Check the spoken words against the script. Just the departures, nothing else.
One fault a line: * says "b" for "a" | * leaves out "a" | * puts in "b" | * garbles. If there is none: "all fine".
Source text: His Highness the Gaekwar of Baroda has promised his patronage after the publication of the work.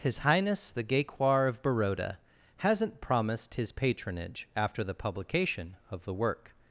* says "hasn't" for "has"